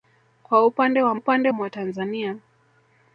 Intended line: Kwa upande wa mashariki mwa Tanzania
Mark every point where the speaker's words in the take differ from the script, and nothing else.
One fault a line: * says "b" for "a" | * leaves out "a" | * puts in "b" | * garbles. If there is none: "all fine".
* says "upande" for "mashariki"